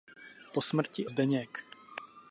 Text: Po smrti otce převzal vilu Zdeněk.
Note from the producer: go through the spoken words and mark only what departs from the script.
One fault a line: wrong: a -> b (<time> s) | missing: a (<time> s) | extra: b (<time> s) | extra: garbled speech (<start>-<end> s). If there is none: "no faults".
missing: otce převzal vilu (1.1 s)